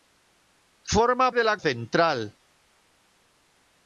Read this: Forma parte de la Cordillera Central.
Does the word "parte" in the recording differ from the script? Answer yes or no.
yes